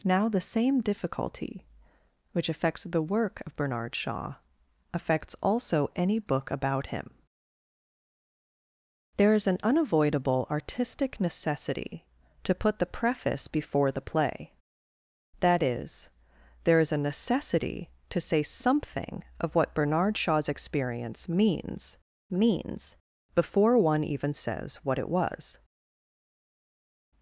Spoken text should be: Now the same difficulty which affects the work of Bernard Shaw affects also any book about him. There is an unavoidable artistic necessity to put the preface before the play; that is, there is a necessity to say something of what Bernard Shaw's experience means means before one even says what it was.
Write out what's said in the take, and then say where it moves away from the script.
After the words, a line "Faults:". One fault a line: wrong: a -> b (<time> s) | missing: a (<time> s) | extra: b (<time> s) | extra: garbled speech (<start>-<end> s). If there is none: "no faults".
Now the same difficulty which affects the work of Bernard Shaw affects also any book about him. There is an unavoidable artistic necessity to put the preface before the play; that is, there is a necessity to say something of what Bernard Shaw's experience means means before one even says what it was.
Faults:
no faults